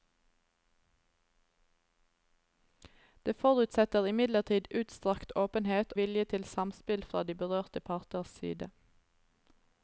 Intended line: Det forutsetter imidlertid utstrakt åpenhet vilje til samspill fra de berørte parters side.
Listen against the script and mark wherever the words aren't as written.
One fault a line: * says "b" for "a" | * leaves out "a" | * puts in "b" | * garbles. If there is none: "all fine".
all fine